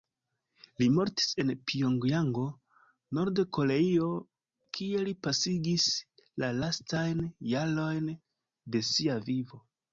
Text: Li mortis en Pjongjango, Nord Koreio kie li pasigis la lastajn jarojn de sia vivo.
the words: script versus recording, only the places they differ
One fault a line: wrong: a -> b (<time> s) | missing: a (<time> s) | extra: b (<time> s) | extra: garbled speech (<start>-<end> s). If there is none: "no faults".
no faults